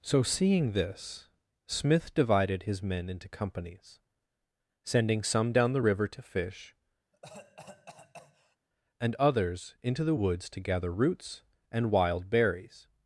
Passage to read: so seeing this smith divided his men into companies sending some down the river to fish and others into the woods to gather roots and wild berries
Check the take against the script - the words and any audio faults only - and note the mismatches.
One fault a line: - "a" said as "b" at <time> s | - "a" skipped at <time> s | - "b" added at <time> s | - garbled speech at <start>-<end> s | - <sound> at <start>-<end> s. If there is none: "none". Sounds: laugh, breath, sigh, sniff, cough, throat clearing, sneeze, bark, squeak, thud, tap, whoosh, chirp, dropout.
- cough at 7.1-8.6 s